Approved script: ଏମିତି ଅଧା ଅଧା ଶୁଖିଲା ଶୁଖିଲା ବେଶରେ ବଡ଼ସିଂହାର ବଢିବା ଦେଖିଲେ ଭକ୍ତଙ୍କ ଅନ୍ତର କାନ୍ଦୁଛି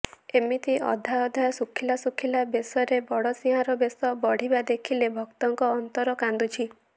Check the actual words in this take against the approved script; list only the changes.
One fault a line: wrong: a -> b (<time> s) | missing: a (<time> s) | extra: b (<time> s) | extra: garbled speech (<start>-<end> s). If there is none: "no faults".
extra: ବେଶ (3.8 s)